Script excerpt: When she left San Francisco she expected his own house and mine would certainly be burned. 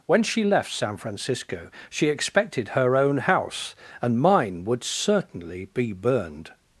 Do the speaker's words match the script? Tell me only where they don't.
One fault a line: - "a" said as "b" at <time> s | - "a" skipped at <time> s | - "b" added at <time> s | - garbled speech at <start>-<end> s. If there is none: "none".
- "his" said as "her" at 2.7 s